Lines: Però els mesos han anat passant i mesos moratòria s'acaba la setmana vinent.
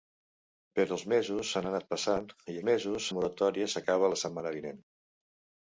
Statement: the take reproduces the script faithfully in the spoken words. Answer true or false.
true